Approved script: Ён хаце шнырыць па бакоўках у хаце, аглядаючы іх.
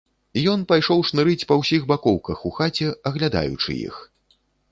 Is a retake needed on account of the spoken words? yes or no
yes